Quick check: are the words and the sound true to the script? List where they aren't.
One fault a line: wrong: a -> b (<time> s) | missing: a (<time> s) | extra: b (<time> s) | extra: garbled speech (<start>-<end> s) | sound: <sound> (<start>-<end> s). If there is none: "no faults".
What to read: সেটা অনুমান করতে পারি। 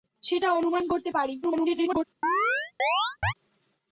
extra: garbled speech (1.4-2.0 s)
sound: chirp (2.2-3.3 s)